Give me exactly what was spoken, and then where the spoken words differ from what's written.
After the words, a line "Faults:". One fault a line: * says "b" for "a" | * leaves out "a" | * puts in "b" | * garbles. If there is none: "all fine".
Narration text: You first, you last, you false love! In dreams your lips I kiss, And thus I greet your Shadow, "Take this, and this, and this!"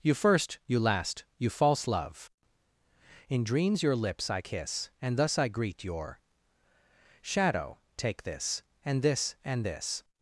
You first, you last, you false love! In dreams your lips I kiss, And thus I greet your Shadow, "Take this, and this, and this!"
Faults:
all fine